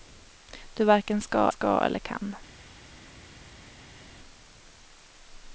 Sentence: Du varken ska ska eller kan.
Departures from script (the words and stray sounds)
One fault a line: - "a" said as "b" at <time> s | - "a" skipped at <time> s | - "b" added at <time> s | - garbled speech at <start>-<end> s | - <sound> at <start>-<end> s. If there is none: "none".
none